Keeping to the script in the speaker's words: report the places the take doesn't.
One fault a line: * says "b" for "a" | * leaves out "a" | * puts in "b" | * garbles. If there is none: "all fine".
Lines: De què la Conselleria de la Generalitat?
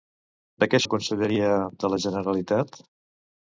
all fine